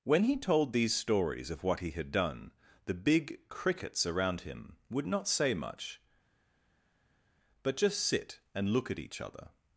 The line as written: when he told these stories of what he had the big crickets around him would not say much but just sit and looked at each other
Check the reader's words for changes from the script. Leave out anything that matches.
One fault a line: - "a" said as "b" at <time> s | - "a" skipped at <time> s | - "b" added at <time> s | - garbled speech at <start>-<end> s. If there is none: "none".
- "done" added at 2.1 s
- "looked" said as "look" at 8.7 s